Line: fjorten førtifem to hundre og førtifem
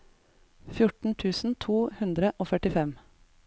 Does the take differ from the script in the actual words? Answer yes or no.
yes